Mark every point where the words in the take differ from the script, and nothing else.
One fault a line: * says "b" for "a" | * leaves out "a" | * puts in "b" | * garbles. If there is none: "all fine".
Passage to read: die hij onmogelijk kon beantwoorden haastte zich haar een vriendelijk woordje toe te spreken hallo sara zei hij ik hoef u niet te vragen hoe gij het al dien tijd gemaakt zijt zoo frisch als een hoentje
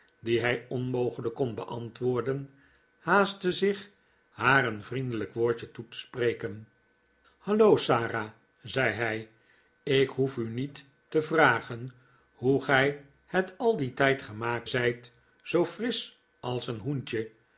all fine